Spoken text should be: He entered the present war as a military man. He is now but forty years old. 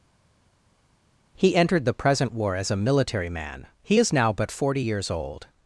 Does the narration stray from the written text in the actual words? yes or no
no